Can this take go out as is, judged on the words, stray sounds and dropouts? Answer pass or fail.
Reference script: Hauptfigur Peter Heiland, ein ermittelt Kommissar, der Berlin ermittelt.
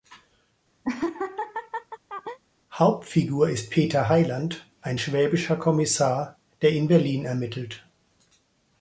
fail